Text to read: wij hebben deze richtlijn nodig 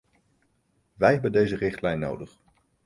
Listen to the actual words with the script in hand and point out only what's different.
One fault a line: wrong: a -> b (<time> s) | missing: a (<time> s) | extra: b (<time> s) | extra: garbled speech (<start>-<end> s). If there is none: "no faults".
no faults